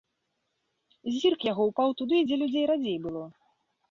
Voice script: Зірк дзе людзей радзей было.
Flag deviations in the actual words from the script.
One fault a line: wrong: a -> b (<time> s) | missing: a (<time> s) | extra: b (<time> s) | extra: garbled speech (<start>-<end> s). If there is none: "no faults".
extra: яго ўпаў туды (1.5 s)